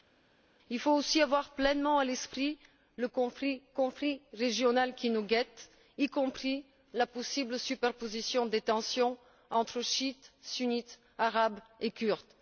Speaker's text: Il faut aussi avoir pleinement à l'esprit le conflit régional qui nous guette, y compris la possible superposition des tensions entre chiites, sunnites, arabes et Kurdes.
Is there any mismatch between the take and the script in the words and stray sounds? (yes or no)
yes